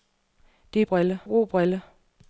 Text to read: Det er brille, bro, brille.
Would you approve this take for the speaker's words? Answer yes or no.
yes